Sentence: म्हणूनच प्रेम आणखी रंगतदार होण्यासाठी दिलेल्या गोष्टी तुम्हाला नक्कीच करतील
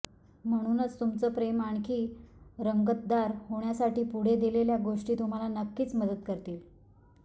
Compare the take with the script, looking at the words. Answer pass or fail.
fail